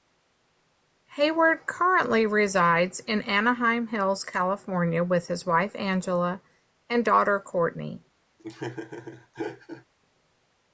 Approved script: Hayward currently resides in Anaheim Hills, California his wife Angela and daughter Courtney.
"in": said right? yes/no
yes